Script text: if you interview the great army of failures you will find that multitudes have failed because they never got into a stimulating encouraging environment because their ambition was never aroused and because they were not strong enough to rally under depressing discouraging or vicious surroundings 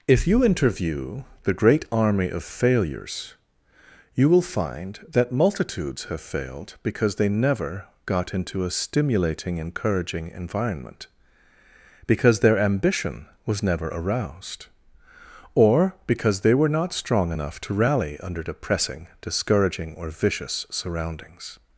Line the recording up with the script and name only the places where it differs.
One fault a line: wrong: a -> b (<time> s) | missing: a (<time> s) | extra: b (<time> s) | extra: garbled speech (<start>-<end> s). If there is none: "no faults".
wrong: and -> or (15.5 s)